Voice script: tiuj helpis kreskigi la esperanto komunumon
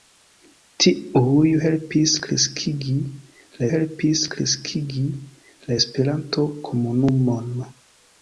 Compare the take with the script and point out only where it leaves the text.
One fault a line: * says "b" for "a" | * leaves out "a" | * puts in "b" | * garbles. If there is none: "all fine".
* puts in "helpis kreskigi la"